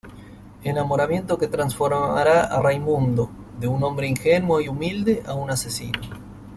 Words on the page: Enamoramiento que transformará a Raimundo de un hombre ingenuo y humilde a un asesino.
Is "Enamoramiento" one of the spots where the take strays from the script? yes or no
no